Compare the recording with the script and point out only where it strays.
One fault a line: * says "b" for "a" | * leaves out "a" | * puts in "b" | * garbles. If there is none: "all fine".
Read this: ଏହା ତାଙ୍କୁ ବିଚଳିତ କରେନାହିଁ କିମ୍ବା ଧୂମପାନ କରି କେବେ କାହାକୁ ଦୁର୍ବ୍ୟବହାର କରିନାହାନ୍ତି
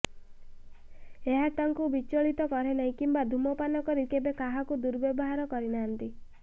all fine